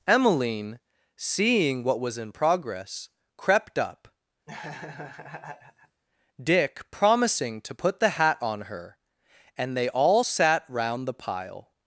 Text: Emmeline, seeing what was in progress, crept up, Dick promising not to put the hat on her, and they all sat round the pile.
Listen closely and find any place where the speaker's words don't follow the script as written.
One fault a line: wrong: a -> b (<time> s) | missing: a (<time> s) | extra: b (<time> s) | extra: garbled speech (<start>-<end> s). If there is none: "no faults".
missing: not (7.6 s)